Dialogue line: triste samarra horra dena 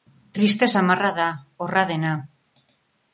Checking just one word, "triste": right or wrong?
right